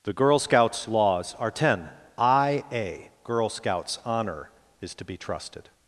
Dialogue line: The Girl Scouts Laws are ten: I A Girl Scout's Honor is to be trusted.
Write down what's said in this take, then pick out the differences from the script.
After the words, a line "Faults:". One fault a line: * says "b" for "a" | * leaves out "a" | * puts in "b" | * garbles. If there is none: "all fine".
The Girl Scouts Laws are ten: I A Girl Scout's Honor is to be trusted.
Faults:
all fine